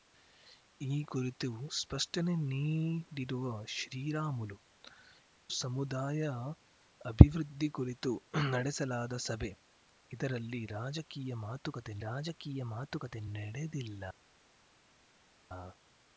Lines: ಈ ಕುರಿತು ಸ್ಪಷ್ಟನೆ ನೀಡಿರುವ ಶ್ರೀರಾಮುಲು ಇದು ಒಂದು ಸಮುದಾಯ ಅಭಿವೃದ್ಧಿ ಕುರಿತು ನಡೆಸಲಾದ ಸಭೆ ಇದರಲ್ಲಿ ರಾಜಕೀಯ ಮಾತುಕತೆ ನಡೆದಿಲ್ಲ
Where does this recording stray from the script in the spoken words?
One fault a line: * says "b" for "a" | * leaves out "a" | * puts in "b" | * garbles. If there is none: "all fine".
* leaves out "ಇದು ಒಂದು"
* puts in "ರಾಜಕೀಯ ಮಾತುಕತೆ"